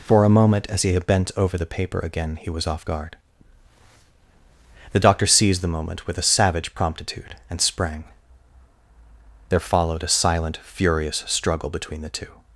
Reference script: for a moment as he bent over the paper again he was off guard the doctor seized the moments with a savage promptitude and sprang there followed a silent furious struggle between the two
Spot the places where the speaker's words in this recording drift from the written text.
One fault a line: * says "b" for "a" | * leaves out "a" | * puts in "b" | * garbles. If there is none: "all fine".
* says "moment" for "moments"